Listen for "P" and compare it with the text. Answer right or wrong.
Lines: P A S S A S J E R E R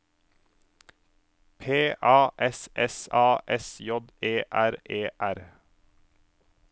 right